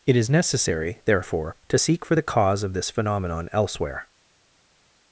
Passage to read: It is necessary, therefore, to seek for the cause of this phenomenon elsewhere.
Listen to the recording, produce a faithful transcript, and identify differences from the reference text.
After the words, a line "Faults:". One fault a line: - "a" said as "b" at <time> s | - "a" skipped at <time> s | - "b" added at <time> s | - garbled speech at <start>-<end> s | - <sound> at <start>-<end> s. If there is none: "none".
It is necessary, therefore, to seek for the cause of this phenomenon elsewhere.
Faults:
none